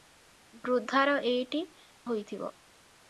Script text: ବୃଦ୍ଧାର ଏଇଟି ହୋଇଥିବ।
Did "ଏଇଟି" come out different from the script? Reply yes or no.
no